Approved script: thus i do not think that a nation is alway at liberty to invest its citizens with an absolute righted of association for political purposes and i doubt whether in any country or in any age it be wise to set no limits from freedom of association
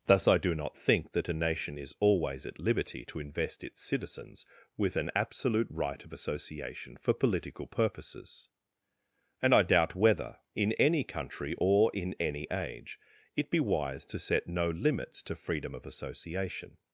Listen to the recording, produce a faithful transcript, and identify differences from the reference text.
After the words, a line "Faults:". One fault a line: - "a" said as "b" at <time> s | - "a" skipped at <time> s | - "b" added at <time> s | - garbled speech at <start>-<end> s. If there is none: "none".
thus i do not think that a nation is always at liberty to invest its citizens with an absolute right of association for political purposes and i doubt whether in any country or in any age it be wise to set no limits to freedom of association
Faults:
- "alway" said as "always" at 2.0 s
- "righted" said as "right" at 5.7 s
- "from" said as "to" at 15.2 s